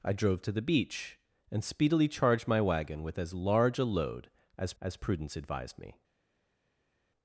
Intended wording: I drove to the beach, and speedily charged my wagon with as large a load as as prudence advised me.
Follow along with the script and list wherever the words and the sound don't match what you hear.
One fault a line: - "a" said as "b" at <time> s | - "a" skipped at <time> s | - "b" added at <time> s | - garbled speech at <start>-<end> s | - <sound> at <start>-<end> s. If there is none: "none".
none